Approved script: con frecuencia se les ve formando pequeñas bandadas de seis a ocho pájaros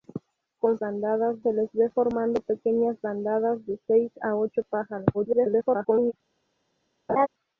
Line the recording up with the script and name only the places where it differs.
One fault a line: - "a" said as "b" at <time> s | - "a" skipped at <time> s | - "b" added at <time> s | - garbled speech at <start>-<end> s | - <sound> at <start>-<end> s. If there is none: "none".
- "frecuencia" said as "bandadas" at 0.8 s
- garbled speech at 5.1-6.1 s
- laugh at 7.1-7.3 s